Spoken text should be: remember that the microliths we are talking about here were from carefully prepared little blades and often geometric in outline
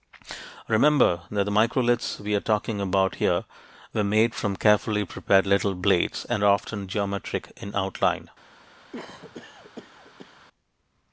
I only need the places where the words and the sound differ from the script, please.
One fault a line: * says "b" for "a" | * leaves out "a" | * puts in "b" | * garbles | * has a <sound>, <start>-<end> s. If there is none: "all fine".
* puts in "made"
* puts in "are"
* has a cough, 8.9-10.5 s